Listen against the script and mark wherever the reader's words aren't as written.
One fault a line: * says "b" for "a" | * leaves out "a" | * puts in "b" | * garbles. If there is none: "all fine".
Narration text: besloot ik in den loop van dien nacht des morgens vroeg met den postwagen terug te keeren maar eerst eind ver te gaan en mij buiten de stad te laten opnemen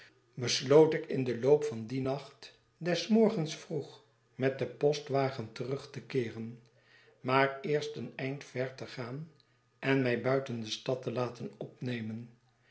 * puts in "een"